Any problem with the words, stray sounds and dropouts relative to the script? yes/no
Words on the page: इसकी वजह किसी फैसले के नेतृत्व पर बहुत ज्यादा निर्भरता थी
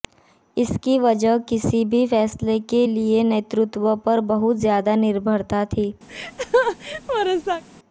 yes